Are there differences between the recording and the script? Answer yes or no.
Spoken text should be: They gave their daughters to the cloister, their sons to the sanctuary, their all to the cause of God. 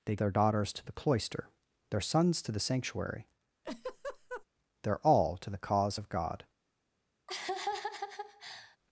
yes